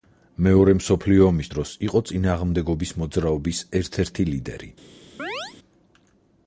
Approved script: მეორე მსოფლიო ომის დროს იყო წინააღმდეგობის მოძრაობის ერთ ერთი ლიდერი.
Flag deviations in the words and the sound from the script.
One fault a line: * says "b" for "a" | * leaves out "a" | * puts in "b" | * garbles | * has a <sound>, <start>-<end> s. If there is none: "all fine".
* has a chirp, 5.2-5.5 s